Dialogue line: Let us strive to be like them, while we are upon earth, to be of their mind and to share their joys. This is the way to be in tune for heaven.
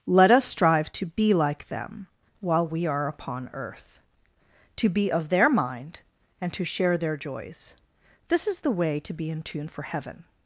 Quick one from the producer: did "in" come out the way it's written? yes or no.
yes